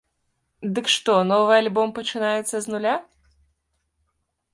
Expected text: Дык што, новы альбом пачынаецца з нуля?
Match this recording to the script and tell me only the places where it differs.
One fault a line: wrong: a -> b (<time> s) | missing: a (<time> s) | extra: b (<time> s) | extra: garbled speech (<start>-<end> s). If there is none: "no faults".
no faults